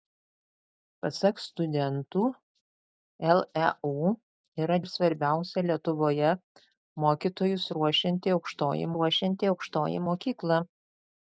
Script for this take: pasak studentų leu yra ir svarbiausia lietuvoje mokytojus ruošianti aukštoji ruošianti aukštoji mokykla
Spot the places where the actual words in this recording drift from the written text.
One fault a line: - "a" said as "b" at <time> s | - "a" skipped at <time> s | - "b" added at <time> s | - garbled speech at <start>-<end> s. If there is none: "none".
none